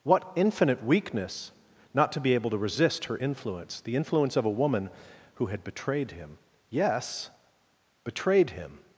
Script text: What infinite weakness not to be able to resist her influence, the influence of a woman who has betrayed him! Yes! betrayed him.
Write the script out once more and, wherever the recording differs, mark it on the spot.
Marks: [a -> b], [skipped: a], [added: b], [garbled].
What infinite weakness not to be able to resist her influence, the influence of a woman who [has -> had] betrayed him! Yes! betrayed him.